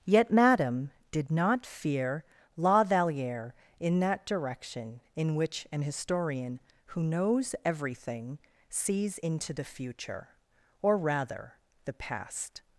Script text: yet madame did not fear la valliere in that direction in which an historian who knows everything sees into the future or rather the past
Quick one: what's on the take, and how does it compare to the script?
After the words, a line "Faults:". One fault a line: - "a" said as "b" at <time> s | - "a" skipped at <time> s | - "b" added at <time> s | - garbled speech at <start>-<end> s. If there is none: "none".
yet madame did not fear la valliere in that direction in which an historian who knows everything sees into the future or rather the past
Faults:
none